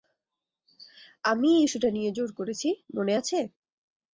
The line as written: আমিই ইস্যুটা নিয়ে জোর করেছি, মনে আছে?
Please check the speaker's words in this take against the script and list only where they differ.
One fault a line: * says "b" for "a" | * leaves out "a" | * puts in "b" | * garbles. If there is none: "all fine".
all fine